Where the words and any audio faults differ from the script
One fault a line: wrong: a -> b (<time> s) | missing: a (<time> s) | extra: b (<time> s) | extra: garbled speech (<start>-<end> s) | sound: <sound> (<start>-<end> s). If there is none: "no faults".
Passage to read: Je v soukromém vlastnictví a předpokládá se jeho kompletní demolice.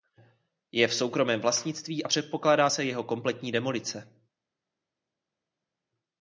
no faults